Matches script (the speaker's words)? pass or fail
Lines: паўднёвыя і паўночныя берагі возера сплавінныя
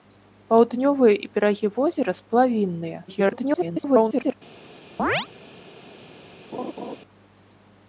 fail